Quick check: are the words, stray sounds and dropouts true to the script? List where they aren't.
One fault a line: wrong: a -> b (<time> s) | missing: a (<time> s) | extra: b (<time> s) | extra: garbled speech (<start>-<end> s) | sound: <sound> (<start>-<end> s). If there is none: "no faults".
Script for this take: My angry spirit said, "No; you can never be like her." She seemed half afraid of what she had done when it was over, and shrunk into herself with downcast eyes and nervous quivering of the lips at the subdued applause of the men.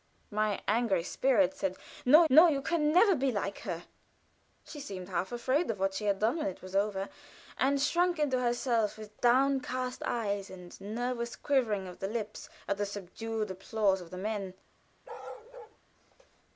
extra: no (2.3 s)
sound: bark (15.0-15.8 s)